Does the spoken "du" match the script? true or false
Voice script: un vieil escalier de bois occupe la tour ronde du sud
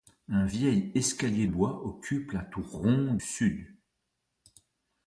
false